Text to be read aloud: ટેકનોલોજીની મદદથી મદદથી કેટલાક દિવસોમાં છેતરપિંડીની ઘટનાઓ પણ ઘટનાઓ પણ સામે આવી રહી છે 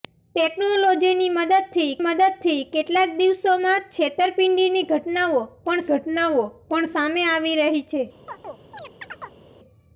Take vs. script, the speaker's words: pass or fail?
pass